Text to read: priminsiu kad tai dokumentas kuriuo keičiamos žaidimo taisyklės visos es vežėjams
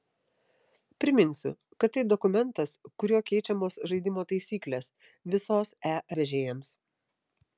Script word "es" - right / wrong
wrong